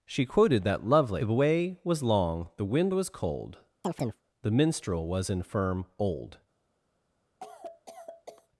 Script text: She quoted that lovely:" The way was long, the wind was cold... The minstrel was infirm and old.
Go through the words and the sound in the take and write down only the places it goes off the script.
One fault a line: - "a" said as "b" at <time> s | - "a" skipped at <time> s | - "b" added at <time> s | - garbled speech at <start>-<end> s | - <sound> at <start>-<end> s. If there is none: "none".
- chirp at 3.8-4.2 s
- "and" skipped at 5.9 s
- cough at 7.4-8.5 s